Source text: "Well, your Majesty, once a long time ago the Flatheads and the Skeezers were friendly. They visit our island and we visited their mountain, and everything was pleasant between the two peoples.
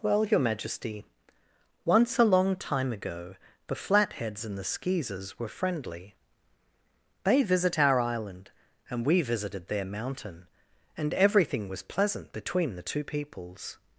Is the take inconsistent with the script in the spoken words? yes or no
no